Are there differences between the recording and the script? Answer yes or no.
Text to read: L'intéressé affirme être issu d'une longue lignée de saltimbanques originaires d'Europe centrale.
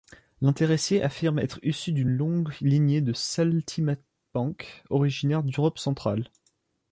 no